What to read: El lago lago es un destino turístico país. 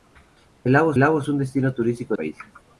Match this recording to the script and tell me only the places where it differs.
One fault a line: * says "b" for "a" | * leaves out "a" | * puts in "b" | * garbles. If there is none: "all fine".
all fine